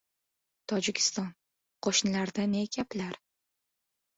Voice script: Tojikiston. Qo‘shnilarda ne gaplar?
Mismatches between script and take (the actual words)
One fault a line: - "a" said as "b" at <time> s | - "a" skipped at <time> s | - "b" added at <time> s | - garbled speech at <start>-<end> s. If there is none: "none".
none